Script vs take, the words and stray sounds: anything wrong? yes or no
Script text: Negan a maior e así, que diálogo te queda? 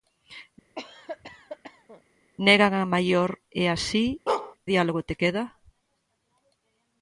yes